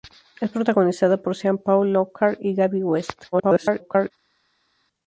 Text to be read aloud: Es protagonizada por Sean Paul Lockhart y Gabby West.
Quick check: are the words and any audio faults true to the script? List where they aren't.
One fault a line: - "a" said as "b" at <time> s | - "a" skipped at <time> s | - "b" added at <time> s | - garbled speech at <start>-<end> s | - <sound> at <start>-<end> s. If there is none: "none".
- garbled speech at 3.3-4.1 s